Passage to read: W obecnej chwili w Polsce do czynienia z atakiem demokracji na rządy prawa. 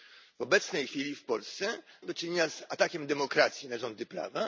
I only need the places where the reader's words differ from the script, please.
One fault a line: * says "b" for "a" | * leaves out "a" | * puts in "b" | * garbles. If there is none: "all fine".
all fine